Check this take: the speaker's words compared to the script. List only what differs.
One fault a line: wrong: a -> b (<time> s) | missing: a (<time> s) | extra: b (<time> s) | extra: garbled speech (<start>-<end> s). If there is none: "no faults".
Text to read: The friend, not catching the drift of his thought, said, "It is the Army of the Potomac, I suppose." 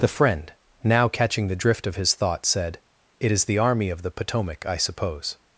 wrong: not -> now (0.8 s)